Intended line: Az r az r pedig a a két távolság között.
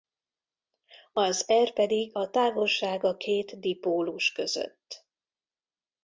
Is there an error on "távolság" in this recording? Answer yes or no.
yes